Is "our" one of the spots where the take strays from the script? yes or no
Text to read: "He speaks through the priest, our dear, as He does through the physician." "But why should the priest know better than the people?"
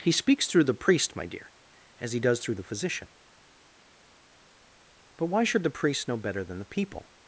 yes